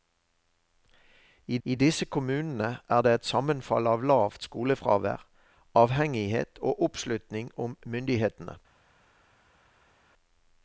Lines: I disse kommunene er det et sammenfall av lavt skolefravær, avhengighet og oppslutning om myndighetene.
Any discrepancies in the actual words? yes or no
yes